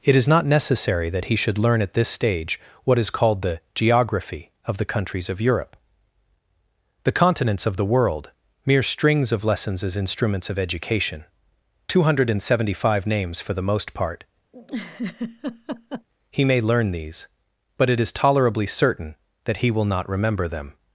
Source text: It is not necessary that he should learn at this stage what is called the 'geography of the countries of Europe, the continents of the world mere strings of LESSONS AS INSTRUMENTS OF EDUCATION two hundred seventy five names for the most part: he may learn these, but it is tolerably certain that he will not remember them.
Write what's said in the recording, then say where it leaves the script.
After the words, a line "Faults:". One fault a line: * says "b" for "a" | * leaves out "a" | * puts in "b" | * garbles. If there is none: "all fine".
It is not necessary that he should learn at this stage what is called the 'geography of the countries of Europe, the continents of the world mere strings of LESSONS AS INSTRUMENTS OF EDUCATION two hundred seventy five names for the most part: he may learn these, but it is tolerably certain that he will not remember them.
Faults:
all fine